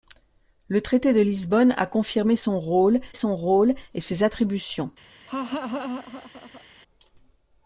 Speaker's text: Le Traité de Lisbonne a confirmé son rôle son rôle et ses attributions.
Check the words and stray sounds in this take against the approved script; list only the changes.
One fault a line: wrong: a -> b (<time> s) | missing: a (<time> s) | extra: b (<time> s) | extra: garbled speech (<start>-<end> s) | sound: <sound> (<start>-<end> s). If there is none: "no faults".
sound: laugh (5.3-6.6 s)